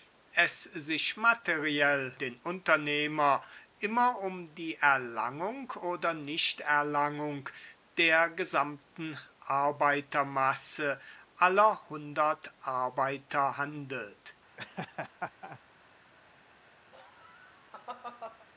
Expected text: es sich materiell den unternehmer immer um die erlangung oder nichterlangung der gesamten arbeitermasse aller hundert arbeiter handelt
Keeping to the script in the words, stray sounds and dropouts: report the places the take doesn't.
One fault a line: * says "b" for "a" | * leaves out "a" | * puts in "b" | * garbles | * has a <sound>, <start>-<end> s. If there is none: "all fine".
* has a laugh, 14.6-15.6 s
* has a laugh, 16.9-18.5 s